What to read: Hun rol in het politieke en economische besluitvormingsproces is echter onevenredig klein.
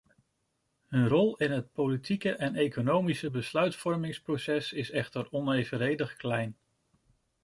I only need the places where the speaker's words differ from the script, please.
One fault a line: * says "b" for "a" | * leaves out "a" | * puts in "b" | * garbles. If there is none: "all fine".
all fine